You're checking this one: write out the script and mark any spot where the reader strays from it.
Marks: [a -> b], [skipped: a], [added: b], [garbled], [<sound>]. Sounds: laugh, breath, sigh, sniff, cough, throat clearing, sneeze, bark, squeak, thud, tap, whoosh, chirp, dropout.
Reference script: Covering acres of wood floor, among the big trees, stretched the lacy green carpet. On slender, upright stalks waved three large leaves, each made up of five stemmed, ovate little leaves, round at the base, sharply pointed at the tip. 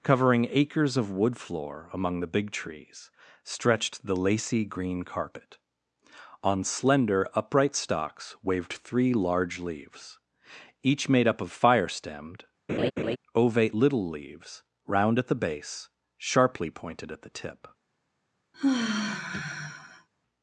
Covering acres of wood floor, among the big trees, stretched the lacy green carpet. On slender, upright stalks waved three large leaves, each made up of [five -> fire] stemmed, [laugh] ovate little leaves, round at the base, sharply pointed at the tip. [sigh]